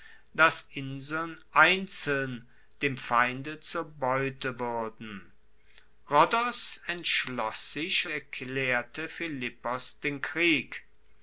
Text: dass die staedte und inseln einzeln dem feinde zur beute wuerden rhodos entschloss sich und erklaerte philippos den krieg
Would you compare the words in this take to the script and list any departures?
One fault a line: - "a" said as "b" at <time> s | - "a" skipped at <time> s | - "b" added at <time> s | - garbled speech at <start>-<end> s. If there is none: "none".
- "die staedte und" skipped at 0.7 s
- "und" skipped at 8.1 s